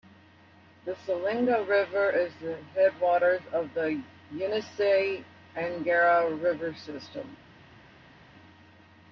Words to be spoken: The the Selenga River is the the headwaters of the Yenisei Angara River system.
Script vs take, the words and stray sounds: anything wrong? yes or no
yes